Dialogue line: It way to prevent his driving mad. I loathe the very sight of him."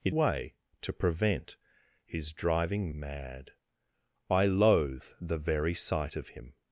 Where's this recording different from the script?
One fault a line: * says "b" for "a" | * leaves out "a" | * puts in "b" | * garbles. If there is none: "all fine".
all fine